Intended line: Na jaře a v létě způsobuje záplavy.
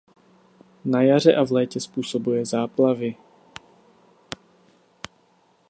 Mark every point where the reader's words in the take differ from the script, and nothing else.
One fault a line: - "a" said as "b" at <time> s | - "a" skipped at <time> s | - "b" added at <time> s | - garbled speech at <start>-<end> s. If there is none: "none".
none